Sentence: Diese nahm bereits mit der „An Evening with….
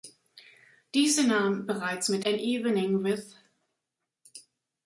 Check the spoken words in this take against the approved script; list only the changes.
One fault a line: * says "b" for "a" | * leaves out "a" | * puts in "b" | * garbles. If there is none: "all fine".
* leaves out "der"